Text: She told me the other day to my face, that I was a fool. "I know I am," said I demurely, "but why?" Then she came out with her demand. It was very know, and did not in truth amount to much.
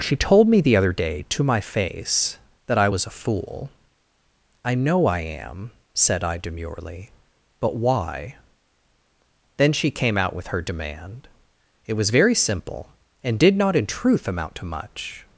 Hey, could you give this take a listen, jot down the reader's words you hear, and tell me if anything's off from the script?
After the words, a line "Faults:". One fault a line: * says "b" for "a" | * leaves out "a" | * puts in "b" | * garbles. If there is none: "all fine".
She told me the other day to my face, that I was a fool. "I know I am," said I demurely, "but why?" Then she came out with her demand. It was very simple, and did not in truth amount to much.
Faults:
* says "simple" for "know"